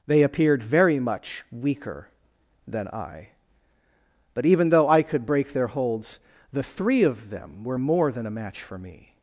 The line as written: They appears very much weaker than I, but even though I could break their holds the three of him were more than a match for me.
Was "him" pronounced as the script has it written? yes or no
no